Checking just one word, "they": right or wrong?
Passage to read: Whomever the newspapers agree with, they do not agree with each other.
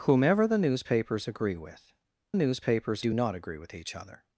wrong